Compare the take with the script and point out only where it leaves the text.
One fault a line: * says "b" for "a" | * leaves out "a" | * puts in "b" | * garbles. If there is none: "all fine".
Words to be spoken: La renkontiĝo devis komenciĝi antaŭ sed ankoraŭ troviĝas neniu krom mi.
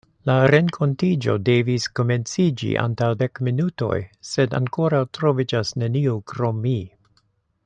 * puts in "dek minutoj"